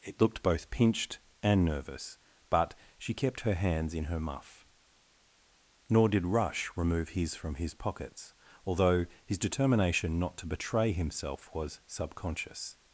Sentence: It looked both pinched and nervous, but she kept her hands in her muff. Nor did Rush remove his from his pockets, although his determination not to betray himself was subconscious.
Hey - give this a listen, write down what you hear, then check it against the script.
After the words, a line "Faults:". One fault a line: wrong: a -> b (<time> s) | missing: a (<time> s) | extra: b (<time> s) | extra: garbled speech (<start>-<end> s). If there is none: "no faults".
It looked both pinched and nervous, but she kept her hands in her muff. Nor did Rush remove his from his pockets, although his determination not to betray himself was subconscious.
Faults:
no faults